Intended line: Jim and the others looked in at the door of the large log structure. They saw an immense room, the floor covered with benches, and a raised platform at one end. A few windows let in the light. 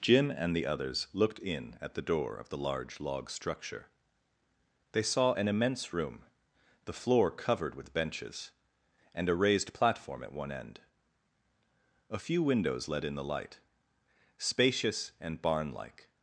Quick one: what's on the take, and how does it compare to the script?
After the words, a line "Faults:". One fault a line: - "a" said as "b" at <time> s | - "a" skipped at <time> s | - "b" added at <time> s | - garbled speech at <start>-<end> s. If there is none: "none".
Jim and the others looked in at the door of the large log structure. They saw an immense room, the floor covered with benches, and a raised platform at one end. A few windows let in the light. Spacious and barn like
Faults:
- "Spacious and barn like" added at 14.4 s